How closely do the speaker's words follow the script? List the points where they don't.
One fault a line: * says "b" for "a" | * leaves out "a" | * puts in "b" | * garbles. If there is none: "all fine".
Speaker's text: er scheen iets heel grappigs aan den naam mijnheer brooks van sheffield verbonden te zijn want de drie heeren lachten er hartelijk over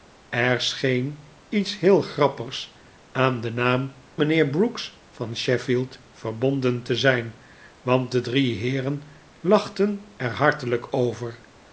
all fine